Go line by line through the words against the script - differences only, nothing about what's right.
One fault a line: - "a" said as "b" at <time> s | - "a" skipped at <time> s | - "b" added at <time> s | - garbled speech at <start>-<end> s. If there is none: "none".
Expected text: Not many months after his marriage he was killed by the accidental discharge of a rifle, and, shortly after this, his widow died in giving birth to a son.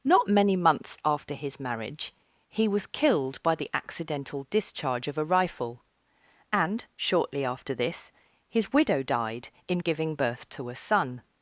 none